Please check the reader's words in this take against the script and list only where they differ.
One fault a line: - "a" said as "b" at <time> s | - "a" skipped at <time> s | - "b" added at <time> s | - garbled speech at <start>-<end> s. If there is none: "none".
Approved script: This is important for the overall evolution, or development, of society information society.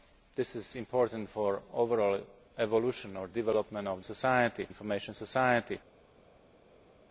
none